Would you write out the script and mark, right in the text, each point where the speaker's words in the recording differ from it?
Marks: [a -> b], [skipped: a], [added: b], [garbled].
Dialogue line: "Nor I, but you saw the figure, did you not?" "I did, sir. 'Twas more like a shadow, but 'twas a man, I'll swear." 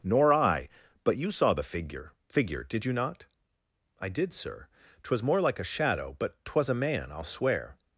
"Nor I, but you saw the figure, [added: figure] did you not?" "I did, sir. 'Twas more like a shadow, but 'twas a man, I'll swear."